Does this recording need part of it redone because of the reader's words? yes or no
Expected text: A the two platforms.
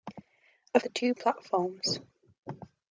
no